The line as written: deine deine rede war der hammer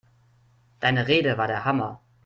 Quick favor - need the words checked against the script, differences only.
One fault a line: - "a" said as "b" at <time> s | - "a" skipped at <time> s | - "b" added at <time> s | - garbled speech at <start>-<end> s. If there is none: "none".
- "deine" skipped at 1.1 s